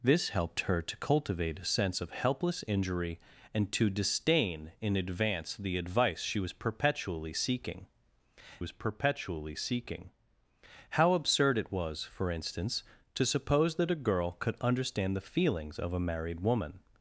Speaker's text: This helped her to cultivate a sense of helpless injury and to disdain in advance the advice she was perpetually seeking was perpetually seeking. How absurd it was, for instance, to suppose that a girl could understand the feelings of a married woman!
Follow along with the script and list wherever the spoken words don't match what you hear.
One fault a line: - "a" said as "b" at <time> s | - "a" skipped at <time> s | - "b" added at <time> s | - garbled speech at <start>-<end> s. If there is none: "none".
none